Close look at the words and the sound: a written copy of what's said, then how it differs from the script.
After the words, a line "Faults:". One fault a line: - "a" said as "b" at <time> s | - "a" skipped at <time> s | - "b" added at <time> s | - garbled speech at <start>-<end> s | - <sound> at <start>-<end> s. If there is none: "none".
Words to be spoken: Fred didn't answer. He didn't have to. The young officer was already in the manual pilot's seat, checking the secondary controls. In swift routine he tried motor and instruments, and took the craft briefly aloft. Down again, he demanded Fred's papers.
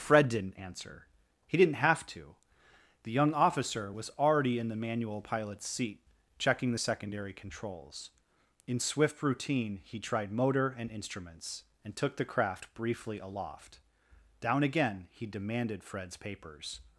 Fred didn't answer. He didn't have to. The young officer was already in the manual pilot's seat, checking the secondary controls. In swift routine he tried motor and instruments, and took the craft briefly aloft. Down again, he demanded Fred's papers.
Faults:
none